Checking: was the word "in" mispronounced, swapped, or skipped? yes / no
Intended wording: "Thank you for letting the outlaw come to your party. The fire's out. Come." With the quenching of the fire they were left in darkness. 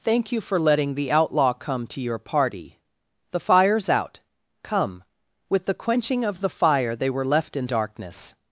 no